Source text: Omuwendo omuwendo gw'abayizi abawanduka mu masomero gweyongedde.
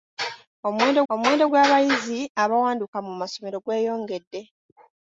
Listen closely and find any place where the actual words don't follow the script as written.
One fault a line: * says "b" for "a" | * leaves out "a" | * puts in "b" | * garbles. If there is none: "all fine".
all fine